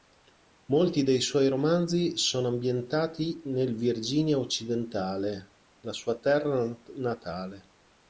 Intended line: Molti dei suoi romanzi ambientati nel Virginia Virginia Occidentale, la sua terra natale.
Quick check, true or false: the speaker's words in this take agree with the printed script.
false